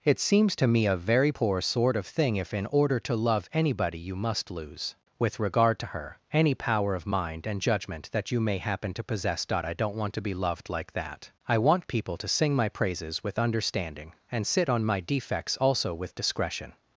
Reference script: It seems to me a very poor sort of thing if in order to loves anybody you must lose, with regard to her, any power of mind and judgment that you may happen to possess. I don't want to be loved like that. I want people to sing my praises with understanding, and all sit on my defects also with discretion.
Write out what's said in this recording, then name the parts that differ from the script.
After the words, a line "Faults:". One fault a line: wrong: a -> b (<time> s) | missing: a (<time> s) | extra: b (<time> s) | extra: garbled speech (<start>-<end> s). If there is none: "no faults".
It seems to me a very poor sort of thing if in order to love anybody you must lose, with regard to her, any power of mind and judgment that you may happen to possess. I don't want to be loved like that. I want people to sing my praises with understanding, and sit on my defects also with discretion.
Faults:
wrong: loves -> love (3.2 s)
missing: all (14.5 s)